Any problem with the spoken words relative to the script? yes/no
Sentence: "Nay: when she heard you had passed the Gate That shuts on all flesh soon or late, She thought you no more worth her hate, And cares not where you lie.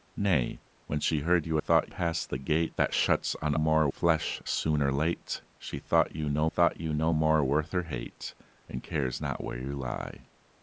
yes